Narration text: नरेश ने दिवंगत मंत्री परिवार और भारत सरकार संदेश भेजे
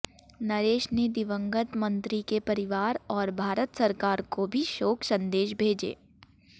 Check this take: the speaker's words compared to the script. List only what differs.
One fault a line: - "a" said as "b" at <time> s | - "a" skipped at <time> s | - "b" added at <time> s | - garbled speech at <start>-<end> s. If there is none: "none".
- "के" added at 2.3 s
- "को भी शोक" added at 4.3 s